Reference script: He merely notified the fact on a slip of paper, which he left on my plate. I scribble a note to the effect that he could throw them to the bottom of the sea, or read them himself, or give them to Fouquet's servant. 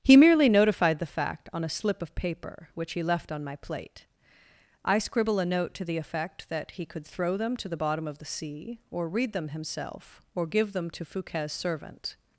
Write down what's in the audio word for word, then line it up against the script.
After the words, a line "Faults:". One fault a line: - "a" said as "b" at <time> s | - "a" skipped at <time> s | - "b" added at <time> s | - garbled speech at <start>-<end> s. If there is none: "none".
He merely notified the fact on a slip of paper, which he left on my plate. I scribble a note to the effect that he could throw them to the bottom of the sea, or read them himself, or give them to Fouquet's servant.
Faults:
none